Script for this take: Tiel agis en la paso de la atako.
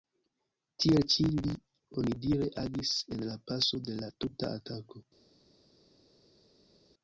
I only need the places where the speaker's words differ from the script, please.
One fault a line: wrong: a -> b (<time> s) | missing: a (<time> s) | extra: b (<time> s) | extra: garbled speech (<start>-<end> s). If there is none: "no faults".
extra: ĉi li onidire (1.1 s)
extra: tuta (4.2 s)